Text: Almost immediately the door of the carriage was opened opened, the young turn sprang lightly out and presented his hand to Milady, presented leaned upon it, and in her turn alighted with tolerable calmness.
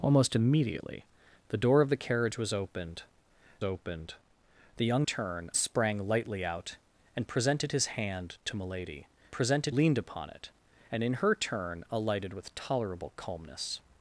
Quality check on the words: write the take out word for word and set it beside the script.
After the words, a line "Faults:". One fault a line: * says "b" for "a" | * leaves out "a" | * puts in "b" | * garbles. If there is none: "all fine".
Almost immediately the door of the carriage was opened opened, the young turn sprang lightly out and presented his hand to Milady, presented leaned upon it, and in her turn alighted with tolerable calmness.
Faults:
all fine